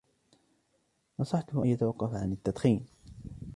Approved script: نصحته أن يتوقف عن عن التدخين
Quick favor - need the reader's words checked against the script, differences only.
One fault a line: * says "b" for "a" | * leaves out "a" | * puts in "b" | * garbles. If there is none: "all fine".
* leaves out "عن"